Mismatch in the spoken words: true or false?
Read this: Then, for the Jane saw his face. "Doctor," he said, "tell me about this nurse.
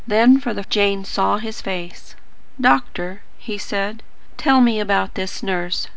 false